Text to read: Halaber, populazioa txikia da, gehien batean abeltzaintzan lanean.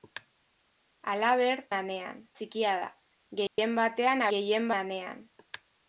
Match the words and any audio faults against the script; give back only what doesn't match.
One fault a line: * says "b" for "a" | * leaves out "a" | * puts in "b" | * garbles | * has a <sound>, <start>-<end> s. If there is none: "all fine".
* says "lanean" for "populazioa"
* has a dropout, 3.5-3.6 s
* says "gehien" for "abeltzaintzan"